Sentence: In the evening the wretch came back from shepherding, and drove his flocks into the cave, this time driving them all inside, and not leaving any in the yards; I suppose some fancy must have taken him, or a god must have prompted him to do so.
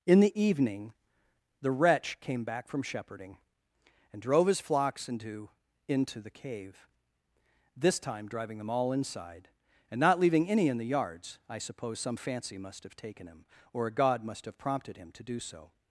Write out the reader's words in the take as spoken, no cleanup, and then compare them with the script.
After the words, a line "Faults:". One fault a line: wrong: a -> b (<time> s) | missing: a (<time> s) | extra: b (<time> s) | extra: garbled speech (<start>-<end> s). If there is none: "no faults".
In the evening the wretch came back from shepherding, and drove his flocks into into the cave, this time driving them all inside, and not leaving any in the yards; I suppose some fancy must have taken him, or a god must have prompted him to do so.
Faults:
extra: into (5.9 s)